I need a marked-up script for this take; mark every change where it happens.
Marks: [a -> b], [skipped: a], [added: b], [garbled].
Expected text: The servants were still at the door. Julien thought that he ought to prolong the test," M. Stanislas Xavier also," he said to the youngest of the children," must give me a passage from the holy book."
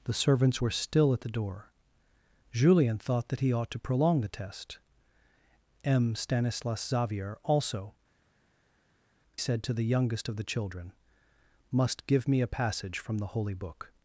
The servants were still at the door. Julien thought that he ought to prolong the test," M. Stanislas Xavier also," [skipped: he] said to the youngest of the children," must give me a passage from the holy book."